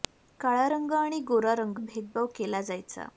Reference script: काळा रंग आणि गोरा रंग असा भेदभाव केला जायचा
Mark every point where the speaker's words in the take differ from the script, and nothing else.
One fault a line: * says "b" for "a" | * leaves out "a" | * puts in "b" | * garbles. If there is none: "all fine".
* leaves out "असा"